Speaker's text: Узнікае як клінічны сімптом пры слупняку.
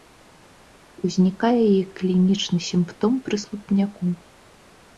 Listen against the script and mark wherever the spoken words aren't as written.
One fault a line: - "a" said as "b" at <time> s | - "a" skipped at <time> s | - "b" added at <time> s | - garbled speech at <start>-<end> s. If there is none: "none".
none